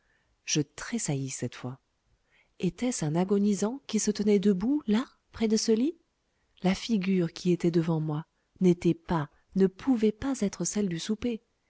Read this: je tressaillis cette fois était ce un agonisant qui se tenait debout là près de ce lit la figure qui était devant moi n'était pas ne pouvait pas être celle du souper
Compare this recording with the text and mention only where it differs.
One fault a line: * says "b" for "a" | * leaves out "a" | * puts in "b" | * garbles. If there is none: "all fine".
all fine